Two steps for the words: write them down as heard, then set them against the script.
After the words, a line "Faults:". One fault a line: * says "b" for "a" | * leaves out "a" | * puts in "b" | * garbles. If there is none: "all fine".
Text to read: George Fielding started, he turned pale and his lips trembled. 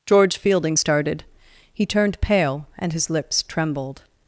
George Fielding started, he turned pale and his lips trembled.
Faults:
all fine